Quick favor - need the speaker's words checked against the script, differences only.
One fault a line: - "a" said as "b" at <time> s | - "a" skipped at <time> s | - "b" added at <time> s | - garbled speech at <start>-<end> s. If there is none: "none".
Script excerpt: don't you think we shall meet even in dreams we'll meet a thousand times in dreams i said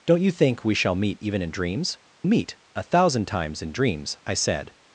- "we'll" skipped at 2.0 s